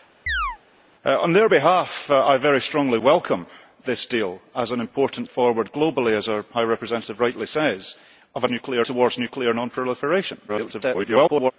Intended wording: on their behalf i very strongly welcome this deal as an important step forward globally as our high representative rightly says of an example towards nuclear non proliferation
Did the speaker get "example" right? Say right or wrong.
wrong